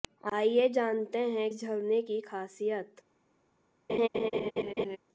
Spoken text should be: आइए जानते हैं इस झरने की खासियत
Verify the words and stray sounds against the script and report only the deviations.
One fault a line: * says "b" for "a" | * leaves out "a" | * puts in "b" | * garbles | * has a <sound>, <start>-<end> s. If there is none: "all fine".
* has a laugh, 3.9-5.0 s